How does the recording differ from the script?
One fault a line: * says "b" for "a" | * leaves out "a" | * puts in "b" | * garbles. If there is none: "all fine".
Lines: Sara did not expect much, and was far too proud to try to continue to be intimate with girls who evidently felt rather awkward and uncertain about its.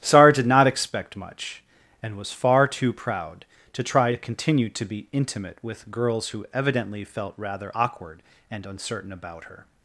* says "her" for "its"